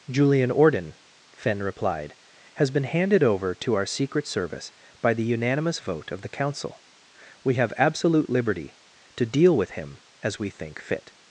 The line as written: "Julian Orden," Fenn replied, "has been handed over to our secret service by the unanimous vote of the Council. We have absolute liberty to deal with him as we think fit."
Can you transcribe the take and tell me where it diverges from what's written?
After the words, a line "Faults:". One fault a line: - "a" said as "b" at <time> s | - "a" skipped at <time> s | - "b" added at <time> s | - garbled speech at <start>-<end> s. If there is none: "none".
"Julian Orden," Fenn replied, "has been handed over to our secret service by the unanimous vote of the Council. We have absolute liberty to deal with him as we think fit."
Faults:
none